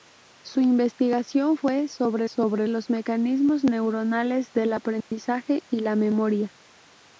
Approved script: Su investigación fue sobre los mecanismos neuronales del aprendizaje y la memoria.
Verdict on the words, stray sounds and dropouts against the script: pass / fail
fail